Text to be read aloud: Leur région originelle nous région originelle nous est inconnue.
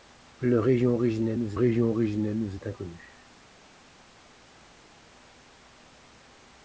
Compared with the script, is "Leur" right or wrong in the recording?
right